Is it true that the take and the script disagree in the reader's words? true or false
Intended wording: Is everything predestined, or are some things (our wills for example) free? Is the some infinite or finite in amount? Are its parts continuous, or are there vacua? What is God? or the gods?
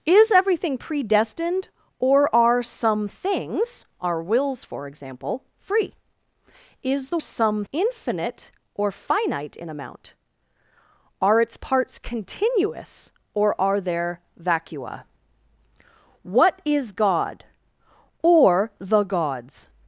false